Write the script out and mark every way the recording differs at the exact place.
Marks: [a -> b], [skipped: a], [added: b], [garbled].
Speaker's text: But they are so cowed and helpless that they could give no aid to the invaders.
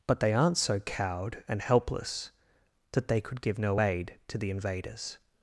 But they [are -> aren't] so cowed and helpless that they could give no aid to the invaders.